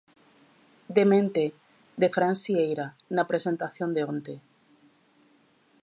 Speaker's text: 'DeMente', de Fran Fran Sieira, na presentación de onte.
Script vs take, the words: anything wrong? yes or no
yes